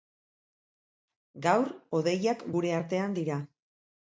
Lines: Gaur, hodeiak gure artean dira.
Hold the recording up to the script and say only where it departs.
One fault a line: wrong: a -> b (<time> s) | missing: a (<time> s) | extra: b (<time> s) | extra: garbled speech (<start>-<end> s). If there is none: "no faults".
no faults